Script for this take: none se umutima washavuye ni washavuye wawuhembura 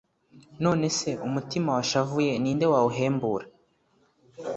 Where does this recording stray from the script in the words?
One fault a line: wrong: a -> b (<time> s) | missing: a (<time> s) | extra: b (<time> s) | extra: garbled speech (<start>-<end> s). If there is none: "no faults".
wrong: washavuye -> nde (2.6 s)